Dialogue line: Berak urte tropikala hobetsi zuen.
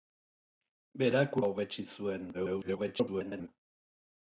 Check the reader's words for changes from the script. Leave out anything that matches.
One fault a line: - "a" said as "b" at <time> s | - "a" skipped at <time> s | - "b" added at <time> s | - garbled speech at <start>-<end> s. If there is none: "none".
- "urte tropikala" skipped at 1.4 s
- garbled speech at 2.3-3.5 s